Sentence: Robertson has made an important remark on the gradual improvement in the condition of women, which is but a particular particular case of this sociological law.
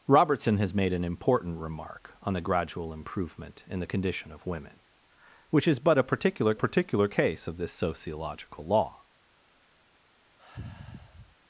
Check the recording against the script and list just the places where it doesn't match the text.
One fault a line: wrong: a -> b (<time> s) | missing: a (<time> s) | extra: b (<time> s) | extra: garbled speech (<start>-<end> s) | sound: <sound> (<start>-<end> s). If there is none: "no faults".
sound: sigh (10.4-11.3 s)